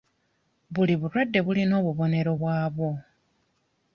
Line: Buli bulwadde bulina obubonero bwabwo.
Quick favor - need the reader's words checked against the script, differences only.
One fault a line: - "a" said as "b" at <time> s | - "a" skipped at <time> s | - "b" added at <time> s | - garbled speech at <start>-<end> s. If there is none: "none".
none